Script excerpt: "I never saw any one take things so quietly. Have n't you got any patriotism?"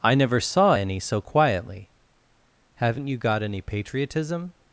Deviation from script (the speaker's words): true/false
true